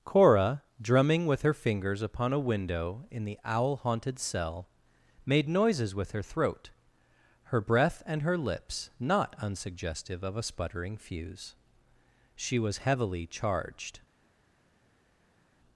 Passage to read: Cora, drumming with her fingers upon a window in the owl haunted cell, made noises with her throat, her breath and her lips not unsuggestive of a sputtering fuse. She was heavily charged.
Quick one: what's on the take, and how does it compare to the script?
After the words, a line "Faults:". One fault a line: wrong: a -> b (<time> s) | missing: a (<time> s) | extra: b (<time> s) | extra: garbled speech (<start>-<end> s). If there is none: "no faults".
Cora, drumming with her fingers upon a window in the owl haunted cell, made noises with her throat, her breath and her lips not unsuggestive of a sputtering fuse. She was heavily charged.
Faults:
no faults